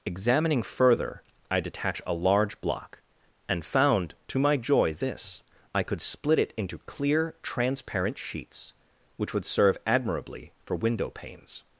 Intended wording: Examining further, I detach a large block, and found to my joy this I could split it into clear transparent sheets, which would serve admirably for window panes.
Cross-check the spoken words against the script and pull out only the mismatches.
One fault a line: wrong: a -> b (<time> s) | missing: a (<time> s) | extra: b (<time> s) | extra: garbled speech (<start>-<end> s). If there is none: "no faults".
no faults